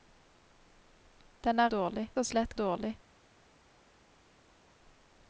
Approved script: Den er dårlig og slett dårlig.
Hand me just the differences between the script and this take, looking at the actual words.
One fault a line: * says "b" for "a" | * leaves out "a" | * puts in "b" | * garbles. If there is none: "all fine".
all fine